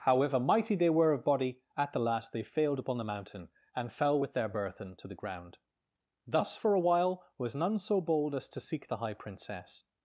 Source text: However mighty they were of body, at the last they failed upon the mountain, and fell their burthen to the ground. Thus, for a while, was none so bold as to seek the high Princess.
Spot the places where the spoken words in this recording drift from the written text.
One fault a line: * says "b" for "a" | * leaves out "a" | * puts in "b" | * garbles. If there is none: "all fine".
* puts in "with"